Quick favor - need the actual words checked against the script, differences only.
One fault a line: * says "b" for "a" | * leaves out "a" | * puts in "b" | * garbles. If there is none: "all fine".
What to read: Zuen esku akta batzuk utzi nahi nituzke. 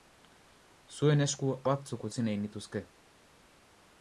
* leaves out "akta"